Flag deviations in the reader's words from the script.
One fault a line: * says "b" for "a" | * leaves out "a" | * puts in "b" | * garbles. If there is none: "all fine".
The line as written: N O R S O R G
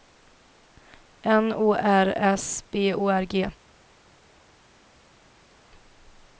* puts in "B"